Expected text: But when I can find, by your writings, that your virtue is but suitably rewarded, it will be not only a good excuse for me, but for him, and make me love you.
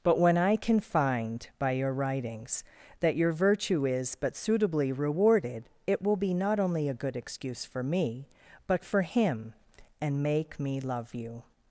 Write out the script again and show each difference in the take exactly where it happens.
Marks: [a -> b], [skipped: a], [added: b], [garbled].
But when I can find, by your writings, that your virtue is but suitably rewarded, it will be not only a good excuse for me, but for him, and make me love you.